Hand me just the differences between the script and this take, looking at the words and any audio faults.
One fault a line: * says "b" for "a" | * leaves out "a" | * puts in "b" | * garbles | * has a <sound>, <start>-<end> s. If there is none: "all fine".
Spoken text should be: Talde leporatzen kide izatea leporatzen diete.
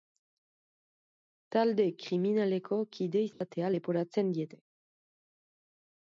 * says "kriminaleko" for "leporatzen"
* has a dropout, 3.3-3.4 s